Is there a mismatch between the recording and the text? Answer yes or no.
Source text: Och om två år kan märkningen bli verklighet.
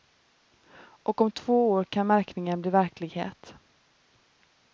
no